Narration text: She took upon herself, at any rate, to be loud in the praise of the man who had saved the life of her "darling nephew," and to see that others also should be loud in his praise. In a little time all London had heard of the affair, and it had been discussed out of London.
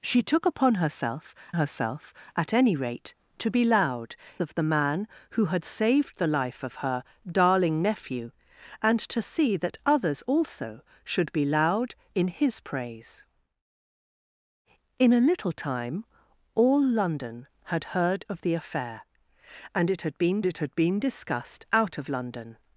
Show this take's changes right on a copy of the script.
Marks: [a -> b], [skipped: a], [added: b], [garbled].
She took upon herself, [added: herself] at any rate, to be loud [skipped: in the praise] of the man who had saved the life of her "darling nephew," and to see that others also should be loud in his praise. In a little time all London had heard of the affair, and it had been [added: it had been] discussed out of London.